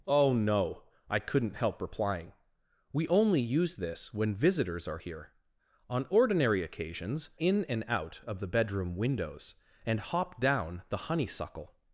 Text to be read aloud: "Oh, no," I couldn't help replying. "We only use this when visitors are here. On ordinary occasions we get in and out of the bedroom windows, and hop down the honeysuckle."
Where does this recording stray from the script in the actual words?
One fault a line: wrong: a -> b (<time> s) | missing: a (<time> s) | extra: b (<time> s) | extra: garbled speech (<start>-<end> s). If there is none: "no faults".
missing: we get (7.3 s)